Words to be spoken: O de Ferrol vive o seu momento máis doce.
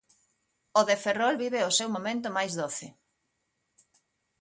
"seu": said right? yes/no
yes